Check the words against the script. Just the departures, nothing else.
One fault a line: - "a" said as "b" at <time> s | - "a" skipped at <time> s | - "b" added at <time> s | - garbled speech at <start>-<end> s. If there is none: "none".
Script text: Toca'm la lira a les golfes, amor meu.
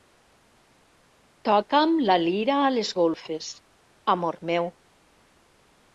none